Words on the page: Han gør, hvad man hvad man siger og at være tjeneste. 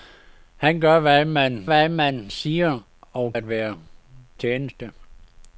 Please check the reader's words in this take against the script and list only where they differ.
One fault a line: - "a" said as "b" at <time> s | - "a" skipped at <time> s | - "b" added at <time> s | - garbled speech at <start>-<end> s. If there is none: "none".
none